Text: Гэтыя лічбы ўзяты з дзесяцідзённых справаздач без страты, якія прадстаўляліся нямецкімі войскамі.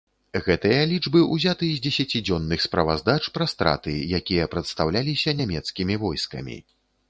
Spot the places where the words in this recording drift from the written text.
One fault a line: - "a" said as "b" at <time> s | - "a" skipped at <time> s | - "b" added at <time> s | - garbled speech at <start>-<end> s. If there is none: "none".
- "без" said as "пра" at 3.4 s